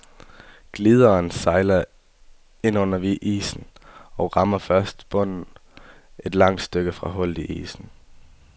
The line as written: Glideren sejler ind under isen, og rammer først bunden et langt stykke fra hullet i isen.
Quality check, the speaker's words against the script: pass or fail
pass